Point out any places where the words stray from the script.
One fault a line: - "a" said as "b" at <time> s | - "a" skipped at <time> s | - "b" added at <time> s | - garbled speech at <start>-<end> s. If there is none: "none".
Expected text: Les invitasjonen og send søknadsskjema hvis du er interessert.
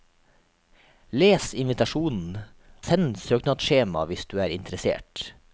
- "og" skipped at 2.4 s